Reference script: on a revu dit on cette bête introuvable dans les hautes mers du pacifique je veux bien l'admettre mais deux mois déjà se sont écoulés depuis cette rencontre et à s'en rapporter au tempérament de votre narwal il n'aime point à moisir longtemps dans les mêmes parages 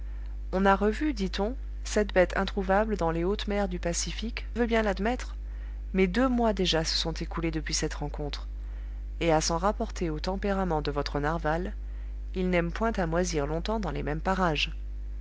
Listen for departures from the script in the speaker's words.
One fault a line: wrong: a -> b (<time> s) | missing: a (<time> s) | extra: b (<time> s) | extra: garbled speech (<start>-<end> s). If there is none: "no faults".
missing: je (4.5 s)